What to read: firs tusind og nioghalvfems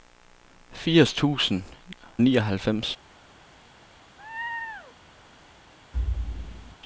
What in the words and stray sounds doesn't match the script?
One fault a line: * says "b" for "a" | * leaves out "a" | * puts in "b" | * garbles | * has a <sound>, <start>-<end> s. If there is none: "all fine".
* leaves out "og"
* has a laugh, 4.2-5.0 s
* has a thud, 5.9-6.8 s